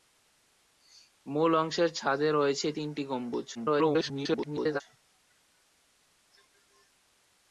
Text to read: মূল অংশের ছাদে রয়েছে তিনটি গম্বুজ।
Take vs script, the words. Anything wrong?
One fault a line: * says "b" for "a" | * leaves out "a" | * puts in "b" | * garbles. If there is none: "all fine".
* garbles